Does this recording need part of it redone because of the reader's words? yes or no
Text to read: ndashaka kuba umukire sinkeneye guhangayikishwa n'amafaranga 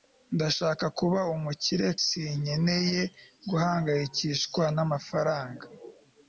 no